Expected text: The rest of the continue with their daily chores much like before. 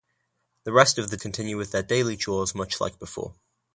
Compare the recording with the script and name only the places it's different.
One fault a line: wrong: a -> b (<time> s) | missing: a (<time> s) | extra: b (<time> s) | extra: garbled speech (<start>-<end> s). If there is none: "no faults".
no faults